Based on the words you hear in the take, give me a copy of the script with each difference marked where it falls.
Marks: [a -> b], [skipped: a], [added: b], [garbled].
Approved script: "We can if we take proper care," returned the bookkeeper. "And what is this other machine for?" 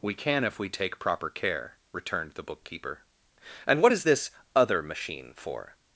"We can if we take proper care," returned the bookkeeper. "And what is this other machine for?"